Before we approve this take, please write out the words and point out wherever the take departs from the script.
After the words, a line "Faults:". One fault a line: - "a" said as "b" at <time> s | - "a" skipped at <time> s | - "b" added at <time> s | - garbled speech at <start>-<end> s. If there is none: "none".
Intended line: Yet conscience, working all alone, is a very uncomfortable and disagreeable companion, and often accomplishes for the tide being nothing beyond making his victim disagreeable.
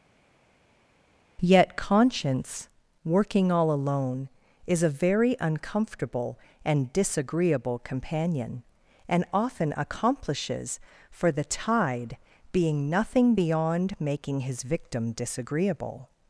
Yet conscience, working all alone, is a very uncomfortable and disagreeable companion, and often accomplishes for the tide being nothing beyond making his victim disagreeable.
Faults:
none